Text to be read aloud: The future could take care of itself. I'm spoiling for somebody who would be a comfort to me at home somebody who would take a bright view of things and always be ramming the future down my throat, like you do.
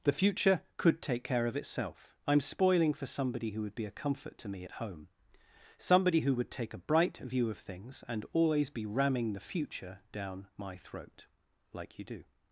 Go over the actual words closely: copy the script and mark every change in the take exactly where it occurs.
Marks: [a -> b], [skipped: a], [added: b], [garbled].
The future could take care of itself. I'm spoiling for somebody who would be a comfort to me at home somebody who would take a bright view of things and always be ramming the future down my throat, like you do.